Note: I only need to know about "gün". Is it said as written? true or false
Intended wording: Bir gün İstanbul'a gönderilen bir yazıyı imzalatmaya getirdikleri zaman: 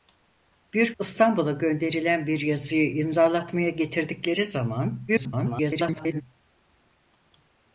false